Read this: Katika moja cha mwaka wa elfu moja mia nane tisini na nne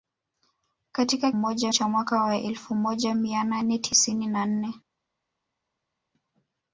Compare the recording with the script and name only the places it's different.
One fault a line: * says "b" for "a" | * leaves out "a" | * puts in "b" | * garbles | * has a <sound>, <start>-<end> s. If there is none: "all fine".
all fine